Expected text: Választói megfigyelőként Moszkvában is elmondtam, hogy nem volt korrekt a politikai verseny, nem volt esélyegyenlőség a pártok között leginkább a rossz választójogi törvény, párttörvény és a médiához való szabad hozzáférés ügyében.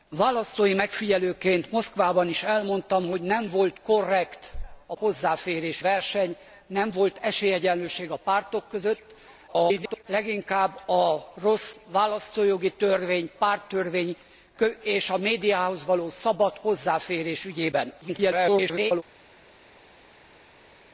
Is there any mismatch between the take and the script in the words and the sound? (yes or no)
yes